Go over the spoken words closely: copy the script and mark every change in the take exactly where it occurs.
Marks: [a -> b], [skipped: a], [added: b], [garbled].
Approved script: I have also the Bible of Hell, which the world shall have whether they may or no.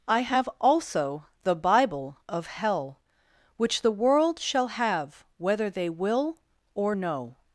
I have also the Bible of Hell, which the world shall have whether they [may -> will] or no.